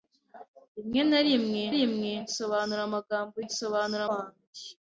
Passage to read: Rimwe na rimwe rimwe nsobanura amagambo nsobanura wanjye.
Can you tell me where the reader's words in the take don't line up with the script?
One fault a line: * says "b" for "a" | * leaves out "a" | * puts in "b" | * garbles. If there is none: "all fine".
all fine